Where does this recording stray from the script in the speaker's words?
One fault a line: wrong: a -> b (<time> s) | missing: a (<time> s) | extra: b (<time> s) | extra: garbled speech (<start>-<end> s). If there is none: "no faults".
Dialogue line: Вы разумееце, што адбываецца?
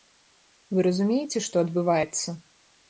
no faults